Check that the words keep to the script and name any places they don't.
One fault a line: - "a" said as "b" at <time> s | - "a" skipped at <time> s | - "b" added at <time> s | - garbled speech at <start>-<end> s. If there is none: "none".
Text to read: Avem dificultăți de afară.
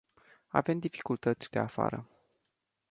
none